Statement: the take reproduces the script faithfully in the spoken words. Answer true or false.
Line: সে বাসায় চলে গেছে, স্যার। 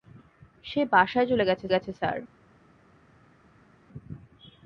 false